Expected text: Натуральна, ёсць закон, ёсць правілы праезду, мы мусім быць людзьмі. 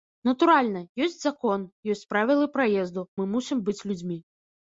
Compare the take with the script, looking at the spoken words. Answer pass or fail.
pass